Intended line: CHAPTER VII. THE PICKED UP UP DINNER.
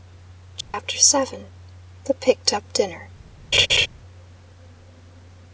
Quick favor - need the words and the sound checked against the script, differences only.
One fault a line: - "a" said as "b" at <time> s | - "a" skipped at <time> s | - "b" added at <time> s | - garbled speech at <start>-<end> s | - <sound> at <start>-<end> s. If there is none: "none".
- dropout at 0.6-0.7 s
- "UP" skipped at 2.7 s
- laugh at 3.5-3.9 s